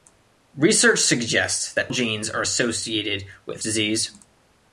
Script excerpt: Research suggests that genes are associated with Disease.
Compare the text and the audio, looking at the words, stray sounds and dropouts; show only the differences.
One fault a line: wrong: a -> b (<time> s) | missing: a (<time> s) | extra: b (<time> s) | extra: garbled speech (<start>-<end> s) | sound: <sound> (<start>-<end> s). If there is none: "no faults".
no faults